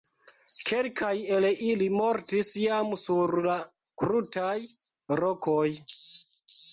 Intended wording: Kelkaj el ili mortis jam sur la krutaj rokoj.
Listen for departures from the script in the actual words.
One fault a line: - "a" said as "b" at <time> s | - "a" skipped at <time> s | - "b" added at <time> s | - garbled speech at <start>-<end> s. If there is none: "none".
none